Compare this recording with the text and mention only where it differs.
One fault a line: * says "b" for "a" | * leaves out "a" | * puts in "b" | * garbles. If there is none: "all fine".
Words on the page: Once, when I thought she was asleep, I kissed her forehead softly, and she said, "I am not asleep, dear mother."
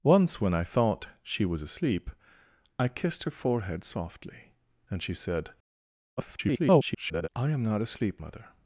* garbles
* leaves out "dear"